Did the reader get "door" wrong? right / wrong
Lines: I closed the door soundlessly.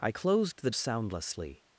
wrong